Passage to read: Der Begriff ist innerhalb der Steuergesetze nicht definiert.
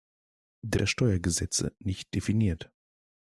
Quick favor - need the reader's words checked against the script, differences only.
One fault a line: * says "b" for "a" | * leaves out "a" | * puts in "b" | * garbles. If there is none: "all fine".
* leaves out "Begriff ist innerhalb"